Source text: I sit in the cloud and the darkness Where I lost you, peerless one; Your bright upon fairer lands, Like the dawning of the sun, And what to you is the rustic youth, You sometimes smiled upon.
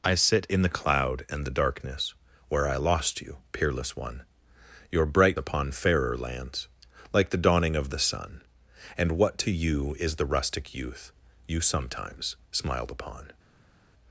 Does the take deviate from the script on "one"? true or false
false